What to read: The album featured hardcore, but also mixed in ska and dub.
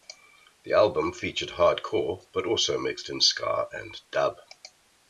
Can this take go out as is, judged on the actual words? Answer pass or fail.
pass